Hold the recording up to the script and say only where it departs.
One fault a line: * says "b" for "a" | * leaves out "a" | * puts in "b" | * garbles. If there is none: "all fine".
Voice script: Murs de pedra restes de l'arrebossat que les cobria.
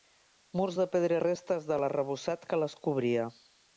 all fine